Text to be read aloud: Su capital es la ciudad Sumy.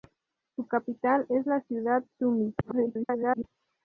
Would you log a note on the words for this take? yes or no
yes